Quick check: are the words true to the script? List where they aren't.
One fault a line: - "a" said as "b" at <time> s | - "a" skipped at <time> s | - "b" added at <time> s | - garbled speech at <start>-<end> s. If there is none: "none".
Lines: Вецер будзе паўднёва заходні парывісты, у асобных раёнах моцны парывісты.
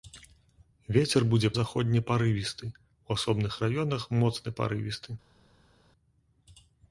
- "паўднёва" skipped at 1.5 s